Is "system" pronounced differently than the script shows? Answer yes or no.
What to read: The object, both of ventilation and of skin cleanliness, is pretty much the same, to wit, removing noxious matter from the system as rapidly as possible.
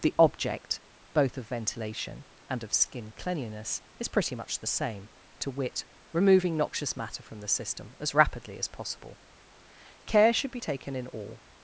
no